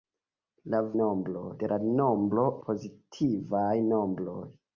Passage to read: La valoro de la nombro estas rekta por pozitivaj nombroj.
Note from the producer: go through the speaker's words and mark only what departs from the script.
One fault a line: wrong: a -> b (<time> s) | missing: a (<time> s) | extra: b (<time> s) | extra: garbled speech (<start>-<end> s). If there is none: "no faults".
wrong: valoro -> nombroj (1.0 s)
missing: estas rekta por (2.4 s)